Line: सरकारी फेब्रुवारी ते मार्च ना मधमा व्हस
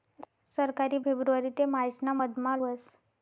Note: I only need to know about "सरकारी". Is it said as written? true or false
true